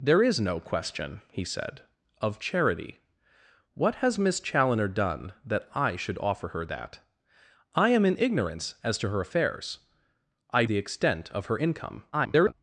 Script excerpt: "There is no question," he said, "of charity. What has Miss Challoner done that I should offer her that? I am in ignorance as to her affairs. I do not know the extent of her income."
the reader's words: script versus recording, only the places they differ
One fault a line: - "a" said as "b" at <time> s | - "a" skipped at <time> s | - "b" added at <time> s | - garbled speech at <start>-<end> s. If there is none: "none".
- "do not know" skipped at 10.7 s
- garbled speech at 12.1-12.5 s